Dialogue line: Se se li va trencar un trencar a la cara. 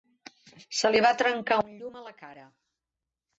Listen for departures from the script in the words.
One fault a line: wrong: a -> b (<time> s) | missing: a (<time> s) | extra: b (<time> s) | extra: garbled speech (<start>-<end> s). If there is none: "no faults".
missing: se (0.9 s)
wrong: trencar -> llum (1.8 s)